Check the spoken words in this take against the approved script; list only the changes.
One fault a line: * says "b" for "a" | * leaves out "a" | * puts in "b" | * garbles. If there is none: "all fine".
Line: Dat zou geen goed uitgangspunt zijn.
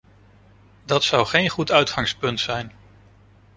all fine